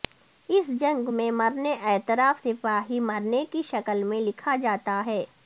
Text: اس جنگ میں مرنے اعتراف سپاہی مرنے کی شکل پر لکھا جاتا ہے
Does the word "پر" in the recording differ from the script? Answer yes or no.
yes